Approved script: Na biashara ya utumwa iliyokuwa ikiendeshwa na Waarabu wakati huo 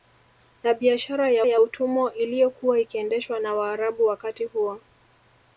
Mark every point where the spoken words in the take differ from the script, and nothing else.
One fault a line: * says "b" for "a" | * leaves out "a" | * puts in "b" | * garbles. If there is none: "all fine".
* puts in "ya"